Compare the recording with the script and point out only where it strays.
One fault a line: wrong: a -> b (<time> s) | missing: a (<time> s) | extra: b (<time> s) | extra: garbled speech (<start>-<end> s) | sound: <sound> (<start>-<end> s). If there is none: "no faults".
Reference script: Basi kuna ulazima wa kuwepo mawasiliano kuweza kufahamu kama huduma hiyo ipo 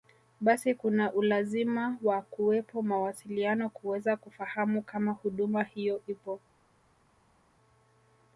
no faults